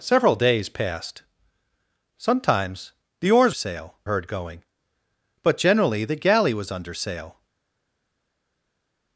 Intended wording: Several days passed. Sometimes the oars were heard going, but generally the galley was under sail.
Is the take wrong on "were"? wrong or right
wrong